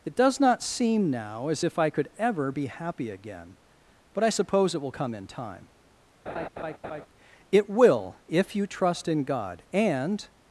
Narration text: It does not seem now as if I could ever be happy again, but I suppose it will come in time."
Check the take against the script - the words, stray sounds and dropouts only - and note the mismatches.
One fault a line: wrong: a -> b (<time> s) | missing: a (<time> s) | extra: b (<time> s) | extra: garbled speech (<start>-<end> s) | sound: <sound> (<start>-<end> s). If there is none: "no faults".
sound: laugh (6.3-7.1 s)
extra: It will if you trust in God and (7.5 s)